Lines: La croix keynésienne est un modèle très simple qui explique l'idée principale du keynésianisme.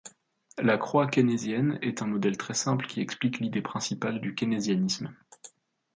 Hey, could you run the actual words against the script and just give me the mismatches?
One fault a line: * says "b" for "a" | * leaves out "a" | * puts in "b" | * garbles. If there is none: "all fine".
all fine